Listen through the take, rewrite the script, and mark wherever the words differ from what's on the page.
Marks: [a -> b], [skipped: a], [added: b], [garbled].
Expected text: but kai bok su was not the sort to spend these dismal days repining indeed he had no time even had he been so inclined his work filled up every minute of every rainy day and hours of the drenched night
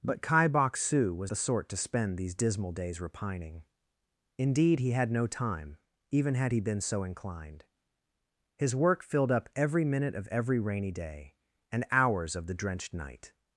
but kai bok su was [skipped: not] the sort to spend these dismal days repining indeed he had no time even had he been so inclined his work filled up every minute of every rainy day and hours of the drenched night